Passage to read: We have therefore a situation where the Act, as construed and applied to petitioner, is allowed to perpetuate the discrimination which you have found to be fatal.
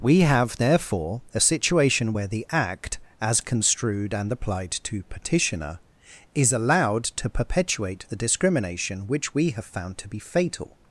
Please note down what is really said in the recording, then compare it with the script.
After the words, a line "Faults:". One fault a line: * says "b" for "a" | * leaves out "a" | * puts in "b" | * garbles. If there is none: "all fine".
We have therefore a situation where the Act, as construed and applied to petitioner, is allowed to perpetuate the discrimination which we have found to be fatal.
Faults:
* says "we" for "you"